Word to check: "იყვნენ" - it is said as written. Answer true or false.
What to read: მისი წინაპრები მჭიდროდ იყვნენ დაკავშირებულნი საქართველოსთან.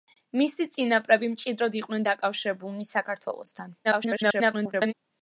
true